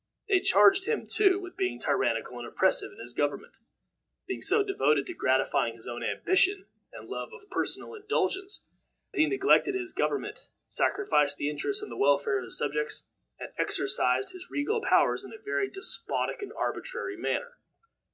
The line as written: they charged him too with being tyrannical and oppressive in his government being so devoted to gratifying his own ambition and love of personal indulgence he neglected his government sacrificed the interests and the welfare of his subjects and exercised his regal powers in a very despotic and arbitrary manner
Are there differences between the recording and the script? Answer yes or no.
no